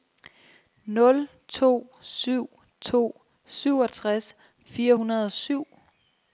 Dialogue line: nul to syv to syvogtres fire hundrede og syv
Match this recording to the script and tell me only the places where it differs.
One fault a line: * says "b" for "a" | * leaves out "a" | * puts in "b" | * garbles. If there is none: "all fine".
all fine